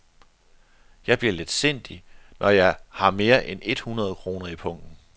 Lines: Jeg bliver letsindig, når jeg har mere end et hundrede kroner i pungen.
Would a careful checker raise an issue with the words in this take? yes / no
no